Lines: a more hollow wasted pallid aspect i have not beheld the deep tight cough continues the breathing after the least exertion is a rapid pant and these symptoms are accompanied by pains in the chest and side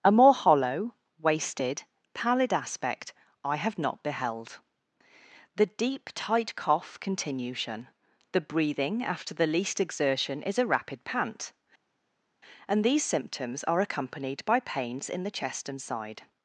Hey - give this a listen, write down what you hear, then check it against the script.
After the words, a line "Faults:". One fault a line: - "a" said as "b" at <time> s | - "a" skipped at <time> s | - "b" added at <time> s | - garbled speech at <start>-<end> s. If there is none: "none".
a more hollow wasted pallid aspect i have not beheld the deep tight cough continuation the breathing after the least exertion is a rapid pant and these symptoms are accompanied by pains in the chest and side
Faults:
- "continues" said as "continuation" at 7.0 s